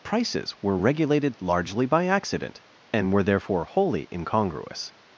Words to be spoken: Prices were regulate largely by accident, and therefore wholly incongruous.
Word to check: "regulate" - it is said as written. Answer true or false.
false